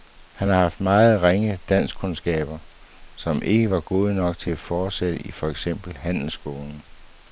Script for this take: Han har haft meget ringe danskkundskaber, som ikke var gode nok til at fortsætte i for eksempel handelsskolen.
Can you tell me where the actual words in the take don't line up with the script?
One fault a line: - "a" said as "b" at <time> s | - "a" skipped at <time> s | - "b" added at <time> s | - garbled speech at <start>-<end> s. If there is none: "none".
none